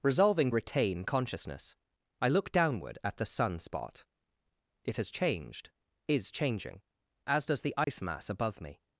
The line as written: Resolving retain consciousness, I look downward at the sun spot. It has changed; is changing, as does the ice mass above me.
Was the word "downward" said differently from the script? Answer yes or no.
no